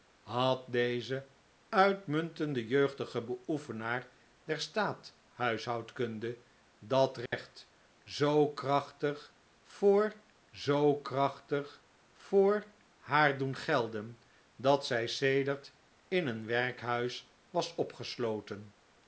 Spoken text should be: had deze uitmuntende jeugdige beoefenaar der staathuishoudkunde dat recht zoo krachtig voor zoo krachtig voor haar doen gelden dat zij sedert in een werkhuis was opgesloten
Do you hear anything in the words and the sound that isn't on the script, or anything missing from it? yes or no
yes